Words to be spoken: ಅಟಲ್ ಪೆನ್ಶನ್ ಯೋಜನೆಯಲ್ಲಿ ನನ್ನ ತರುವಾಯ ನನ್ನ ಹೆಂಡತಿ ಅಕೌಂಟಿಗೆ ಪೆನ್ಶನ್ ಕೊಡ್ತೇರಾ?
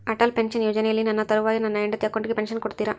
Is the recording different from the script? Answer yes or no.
no